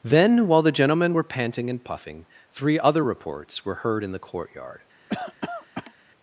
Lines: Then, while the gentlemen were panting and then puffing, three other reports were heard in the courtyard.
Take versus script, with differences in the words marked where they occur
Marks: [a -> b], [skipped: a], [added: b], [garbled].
Then, while the gentlemen were panting and [skipped: then] puffing, three other reports were heard in the courtyard.